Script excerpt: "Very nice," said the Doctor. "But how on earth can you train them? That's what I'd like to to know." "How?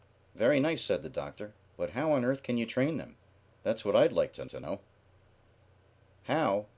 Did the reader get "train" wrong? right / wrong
right